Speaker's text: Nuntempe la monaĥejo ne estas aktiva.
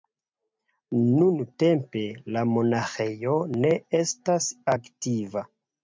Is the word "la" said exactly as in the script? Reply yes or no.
yes